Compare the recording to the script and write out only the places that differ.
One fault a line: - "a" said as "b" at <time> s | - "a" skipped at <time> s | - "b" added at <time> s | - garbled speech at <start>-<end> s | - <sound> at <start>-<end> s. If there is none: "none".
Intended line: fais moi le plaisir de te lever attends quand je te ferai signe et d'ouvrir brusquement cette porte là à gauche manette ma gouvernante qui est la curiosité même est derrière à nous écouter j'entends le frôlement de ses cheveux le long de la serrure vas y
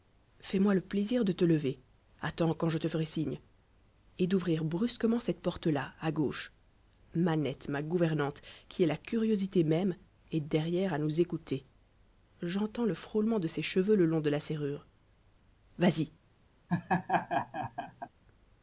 - laugh at 16.7-18.1 s